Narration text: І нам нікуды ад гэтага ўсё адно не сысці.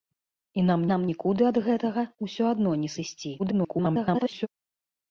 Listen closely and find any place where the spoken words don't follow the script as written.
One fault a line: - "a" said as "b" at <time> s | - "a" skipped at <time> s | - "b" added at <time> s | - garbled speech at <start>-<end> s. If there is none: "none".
- "нам" added at 0.9 s
- garbled speech at 3.4-4.5 s